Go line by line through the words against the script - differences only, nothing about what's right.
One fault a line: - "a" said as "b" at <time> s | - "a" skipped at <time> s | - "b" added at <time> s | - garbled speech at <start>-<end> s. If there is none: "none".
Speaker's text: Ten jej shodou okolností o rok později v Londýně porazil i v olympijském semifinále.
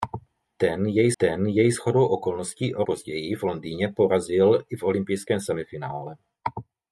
- "ten jej" added at 1.2 s
- "rok" skipped at 2.8 s